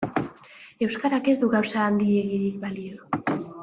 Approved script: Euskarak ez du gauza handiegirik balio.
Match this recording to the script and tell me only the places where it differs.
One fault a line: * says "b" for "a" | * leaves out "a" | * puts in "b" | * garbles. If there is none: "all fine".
all fine